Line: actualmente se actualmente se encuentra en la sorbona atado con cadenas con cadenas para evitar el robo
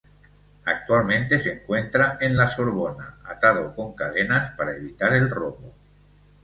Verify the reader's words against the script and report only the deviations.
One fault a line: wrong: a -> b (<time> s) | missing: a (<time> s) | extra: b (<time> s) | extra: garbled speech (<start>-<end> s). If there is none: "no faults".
missing: actualmente se (1.5 s)
missing: con cadenas (4.5 s)